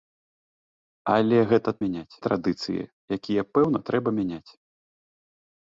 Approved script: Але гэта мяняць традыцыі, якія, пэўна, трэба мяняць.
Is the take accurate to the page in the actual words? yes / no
yes